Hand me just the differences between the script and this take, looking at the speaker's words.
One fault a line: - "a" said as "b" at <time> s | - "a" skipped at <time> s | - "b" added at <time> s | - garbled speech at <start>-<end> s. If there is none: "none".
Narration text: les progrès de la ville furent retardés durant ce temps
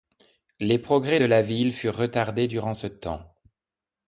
none